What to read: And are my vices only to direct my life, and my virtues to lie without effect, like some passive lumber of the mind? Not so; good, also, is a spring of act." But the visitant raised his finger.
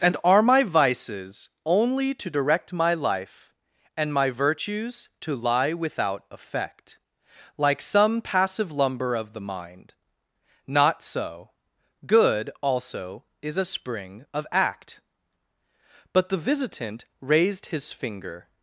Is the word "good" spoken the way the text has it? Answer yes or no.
yes